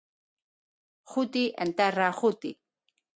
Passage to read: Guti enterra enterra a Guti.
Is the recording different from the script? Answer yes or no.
yes